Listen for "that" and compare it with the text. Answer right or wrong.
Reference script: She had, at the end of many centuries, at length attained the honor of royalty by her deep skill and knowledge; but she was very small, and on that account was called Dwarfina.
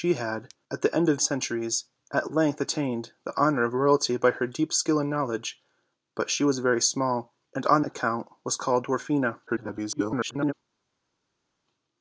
wrong